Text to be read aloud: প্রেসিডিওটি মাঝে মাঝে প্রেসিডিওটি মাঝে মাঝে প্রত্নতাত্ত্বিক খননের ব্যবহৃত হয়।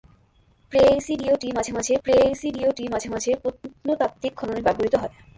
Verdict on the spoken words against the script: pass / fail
pass